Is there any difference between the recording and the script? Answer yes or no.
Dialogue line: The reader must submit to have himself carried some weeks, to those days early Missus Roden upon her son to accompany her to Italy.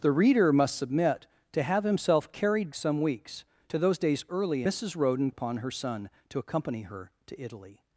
no